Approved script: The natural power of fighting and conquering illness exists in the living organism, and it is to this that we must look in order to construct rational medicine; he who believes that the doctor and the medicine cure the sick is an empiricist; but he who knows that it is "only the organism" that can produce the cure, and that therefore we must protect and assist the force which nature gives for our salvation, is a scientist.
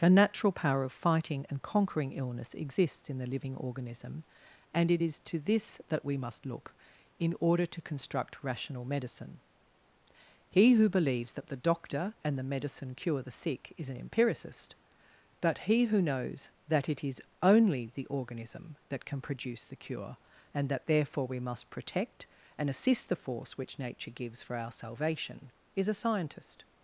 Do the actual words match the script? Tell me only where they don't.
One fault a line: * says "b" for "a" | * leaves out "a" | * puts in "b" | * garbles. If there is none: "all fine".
all fine